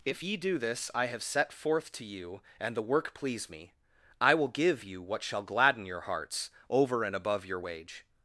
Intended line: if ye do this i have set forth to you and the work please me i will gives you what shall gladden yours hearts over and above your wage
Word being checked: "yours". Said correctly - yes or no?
no